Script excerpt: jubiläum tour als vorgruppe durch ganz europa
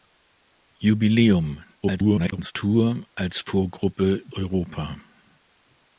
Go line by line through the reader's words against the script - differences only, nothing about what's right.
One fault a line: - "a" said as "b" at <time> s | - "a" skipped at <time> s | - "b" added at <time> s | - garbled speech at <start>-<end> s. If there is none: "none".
- garbled speech at 1.8-2.5 s
- "durch ganz" skipped at 4.2 s